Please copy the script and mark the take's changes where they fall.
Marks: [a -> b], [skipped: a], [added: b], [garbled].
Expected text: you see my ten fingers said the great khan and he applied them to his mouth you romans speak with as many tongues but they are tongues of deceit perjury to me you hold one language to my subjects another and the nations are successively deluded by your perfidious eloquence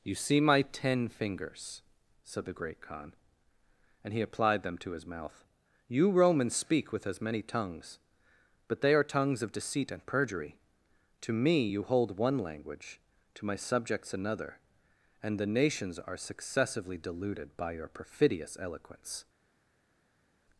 you see my ten fingers said the great khan and he applied them to his mouth you romans speak with as many tongues but they are tongues of deceit [added: and] perjury to me you hold one language to my subjects another and the nations are successively deluded by your perfidious eloquence